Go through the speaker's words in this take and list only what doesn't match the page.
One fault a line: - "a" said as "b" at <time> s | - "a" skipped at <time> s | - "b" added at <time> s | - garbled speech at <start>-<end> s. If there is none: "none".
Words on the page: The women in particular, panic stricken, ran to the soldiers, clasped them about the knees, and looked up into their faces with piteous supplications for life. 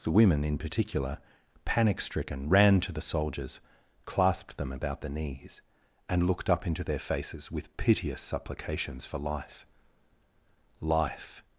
- "life" added at 10.8 s